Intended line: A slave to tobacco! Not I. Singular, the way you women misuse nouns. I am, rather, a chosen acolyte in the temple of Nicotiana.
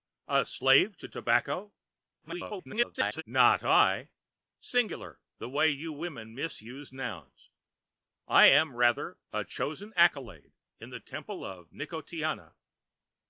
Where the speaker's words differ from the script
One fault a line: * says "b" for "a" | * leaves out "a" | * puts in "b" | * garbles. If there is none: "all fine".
* garbles